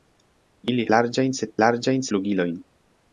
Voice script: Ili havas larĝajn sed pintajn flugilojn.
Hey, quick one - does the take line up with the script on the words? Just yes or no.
no